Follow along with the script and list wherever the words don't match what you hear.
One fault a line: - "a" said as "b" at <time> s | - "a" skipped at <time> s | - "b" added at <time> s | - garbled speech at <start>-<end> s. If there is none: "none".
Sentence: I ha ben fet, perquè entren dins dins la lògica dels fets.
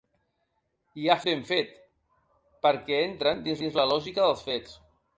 none